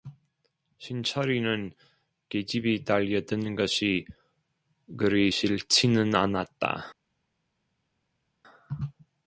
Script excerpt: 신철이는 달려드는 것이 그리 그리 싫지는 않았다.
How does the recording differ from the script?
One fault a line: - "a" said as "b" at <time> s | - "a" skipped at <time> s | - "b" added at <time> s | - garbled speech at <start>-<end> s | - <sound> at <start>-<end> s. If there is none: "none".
- "계집이" added at 2.3 s
- "그리" skipped at 5.3 s